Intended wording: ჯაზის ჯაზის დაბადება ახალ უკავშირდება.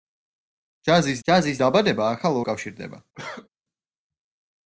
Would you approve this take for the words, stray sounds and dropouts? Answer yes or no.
no